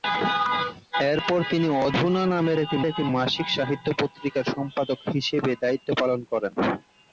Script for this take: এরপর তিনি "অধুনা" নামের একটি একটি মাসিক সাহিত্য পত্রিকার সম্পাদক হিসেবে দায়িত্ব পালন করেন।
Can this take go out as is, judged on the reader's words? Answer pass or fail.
pass